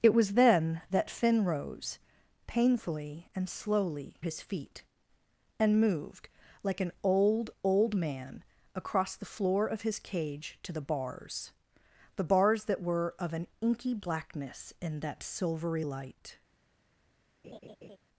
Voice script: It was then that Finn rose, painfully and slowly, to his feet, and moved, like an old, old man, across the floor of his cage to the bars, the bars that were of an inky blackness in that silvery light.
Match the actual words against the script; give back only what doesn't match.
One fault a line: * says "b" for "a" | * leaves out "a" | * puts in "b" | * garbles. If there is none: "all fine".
* leaves out "to"